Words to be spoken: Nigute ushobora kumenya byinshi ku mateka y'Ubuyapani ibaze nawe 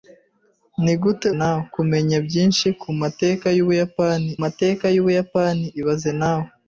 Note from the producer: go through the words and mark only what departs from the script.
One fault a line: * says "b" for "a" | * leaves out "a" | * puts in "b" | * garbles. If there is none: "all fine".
* says "nawe" for "ushobora"
* puts in "mateka y'Ubuyapani"